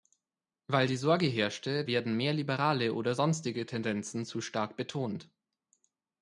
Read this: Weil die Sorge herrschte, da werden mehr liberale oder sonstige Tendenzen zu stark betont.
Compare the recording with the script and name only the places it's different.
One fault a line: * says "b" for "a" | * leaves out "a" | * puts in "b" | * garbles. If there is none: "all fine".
* leaves out "da"